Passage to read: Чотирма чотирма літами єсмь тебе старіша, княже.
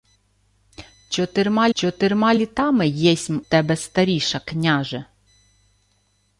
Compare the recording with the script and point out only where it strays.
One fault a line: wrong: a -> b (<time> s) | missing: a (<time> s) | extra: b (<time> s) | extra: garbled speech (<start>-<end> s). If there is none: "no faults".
no faults